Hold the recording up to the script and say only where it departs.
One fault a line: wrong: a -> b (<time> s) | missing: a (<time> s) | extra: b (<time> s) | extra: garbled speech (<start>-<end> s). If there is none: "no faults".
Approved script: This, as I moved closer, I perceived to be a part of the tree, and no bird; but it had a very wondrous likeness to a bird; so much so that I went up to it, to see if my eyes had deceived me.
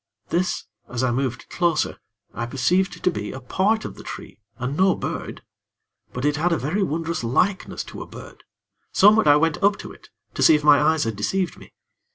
missing: so that (9.3 s)